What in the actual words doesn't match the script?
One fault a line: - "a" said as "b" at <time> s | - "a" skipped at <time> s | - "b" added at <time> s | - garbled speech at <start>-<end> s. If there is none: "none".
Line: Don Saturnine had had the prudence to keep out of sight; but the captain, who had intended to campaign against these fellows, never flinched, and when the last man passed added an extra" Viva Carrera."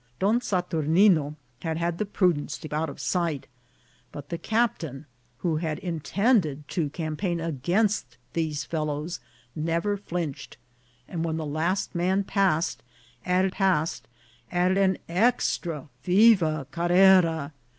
- "keep" skipped at 2.7 s
- "passed added" added at 13.5 s